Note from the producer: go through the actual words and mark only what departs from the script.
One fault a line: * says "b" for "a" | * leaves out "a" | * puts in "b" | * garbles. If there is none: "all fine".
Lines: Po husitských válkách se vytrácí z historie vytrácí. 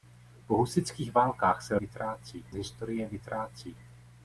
all fine